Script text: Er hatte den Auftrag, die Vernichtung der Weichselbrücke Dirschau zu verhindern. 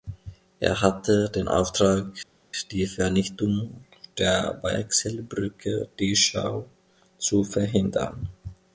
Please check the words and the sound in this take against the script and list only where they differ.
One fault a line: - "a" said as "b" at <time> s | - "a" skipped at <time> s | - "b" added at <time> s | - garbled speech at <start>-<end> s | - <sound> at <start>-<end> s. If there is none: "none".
none